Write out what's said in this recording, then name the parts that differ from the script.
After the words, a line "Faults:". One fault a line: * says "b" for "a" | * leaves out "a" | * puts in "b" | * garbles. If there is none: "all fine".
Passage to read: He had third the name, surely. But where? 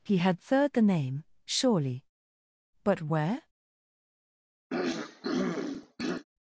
He had third the name, surely. But where?
Faults:
all fine